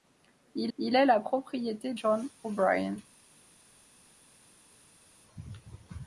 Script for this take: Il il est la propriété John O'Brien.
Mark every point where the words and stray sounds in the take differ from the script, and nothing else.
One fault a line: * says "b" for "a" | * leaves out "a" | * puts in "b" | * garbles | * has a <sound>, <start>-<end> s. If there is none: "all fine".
all fine